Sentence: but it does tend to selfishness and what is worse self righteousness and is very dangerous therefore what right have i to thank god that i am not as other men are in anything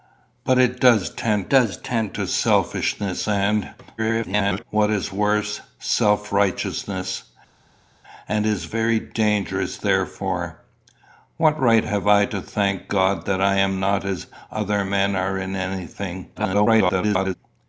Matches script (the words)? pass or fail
fail